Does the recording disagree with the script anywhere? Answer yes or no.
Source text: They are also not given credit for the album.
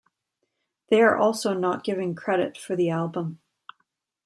no